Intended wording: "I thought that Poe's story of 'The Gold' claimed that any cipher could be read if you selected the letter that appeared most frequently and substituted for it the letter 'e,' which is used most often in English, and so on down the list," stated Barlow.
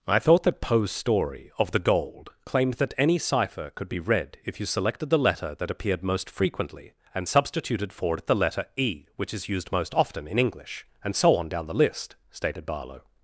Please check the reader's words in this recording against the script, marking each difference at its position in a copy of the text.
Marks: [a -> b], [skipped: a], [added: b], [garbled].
"I thought that Poe's story of 'The Gold' claimed that any cipher could be read if you selected the letter that appeared most frequently and substituted for it the letter 'e,' which is used most often in English, and so on down the list," stated Barlow.